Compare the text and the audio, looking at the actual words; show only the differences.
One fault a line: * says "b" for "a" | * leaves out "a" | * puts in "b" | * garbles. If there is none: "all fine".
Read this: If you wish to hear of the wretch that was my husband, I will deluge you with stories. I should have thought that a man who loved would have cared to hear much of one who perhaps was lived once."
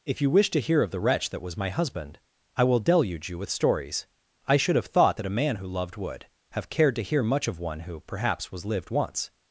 all fine